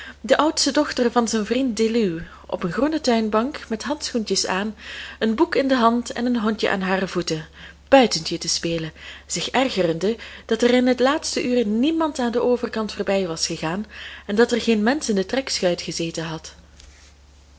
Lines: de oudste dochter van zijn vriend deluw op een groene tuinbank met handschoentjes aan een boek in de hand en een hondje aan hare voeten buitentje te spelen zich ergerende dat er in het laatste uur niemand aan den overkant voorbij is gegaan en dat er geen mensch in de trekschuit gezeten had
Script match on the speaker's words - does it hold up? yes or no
no